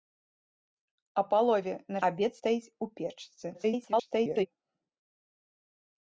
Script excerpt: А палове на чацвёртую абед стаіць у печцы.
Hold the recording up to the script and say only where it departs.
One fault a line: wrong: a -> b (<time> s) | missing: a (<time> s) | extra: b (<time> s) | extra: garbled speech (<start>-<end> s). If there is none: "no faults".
missing: чацвёртую (2.0 s)
extra: garbled speech (3.5-4.5 s)